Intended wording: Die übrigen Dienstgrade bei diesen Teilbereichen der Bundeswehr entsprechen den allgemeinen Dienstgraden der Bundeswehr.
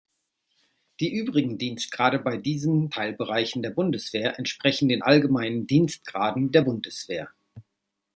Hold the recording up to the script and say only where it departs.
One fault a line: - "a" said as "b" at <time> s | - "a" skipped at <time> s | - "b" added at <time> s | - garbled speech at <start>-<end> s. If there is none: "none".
none